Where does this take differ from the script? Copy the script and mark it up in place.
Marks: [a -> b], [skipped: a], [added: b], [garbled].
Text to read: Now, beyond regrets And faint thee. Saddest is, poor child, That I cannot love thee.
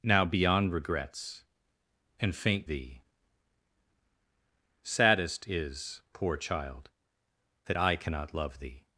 Now, beyond regrets And faint thee. Saddest is, poor child, That I cannot love thee.